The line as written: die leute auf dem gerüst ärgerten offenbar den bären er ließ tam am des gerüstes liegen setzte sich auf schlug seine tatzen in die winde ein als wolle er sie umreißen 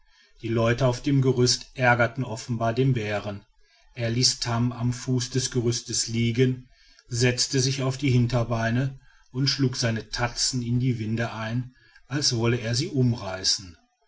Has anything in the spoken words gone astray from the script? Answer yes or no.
yes